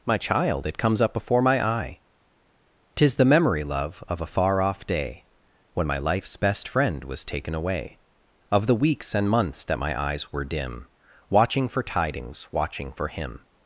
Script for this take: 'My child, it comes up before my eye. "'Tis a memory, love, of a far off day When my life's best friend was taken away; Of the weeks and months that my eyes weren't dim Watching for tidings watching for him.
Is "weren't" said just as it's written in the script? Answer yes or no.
no